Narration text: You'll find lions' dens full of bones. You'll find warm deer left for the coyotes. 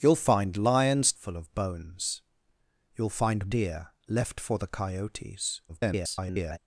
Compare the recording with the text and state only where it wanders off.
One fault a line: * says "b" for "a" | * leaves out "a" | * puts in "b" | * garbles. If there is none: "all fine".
* leaves out "dens"
* leaves out "warm"
* garbles